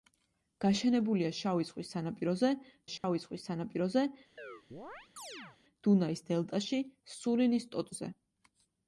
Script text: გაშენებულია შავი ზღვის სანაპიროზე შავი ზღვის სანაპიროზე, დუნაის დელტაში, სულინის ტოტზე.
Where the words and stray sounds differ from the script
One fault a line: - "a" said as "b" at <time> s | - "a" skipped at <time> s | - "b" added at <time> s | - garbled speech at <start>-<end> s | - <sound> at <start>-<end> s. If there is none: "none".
- dropout at 3.0-3.0 s
- chirp at 4.4-5.6 s